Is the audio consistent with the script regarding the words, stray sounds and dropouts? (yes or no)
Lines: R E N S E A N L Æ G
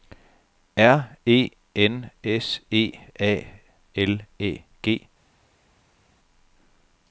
no